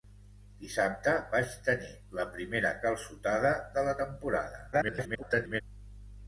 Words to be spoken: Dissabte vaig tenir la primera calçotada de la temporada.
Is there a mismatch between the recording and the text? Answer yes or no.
yes